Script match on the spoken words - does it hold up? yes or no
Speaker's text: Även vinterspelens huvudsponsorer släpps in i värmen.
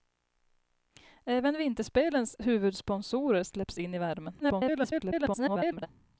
no